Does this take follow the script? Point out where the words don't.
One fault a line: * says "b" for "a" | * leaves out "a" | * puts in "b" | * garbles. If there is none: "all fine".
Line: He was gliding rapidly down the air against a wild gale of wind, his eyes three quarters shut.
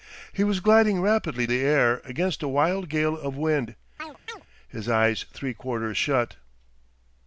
* leaves out "down"